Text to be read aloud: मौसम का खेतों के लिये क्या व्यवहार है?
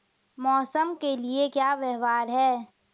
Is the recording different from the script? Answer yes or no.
yes